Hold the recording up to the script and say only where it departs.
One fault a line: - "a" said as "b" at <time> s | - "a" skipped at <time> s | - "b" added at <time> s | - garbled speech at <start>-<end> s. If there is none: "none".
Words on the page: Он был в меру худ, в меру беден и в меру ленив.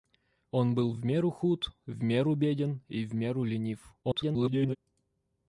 - garbled speech at 4.0-4.8 s